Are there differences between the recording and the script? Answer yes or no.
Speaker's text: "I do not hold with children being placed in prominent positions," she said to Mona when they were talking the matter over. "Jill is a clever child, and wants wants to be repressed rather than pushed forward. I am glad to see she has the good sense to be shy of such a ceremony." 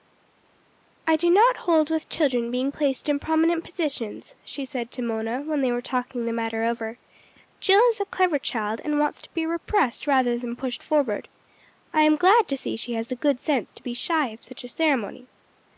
yes